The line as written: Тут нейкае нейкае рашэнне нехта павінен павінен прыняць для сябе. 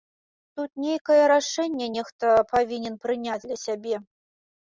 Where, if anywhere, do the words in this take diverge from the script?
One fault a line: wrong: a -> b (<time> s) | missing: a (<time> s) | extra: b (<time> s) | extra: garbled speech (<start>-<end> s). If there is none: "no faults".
missing: нейкае (1.2 s)
missing: павінен (3.0 s)